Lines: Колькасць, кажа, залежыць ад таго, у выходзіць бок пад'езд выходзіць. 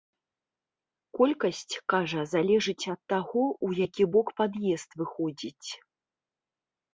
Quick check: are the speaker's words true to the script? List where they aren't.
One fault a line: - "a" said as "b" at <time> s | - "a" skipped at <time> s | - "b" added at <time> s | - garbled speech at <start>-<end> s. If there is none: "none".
- "выходзіць" said as "які" at 3.9 s